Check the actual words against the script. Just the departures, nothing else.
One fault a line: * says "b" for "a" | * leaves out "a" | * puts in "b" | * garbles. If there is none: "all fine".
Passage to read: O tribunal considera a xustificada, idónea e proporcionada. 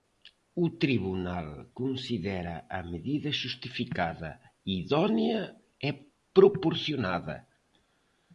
* puts in "medida"